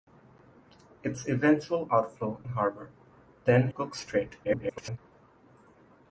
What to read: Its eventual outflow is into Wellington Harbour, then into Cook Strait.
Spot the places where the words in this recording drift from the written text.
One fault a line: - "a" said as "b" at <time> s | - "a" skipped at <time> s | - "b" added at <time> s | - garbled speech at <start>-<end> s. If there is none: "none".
- "is into Wellington" skipped at 2.4 s
- "into" skipped at 3.7 s
- garbled speech at 4.4-5.0 s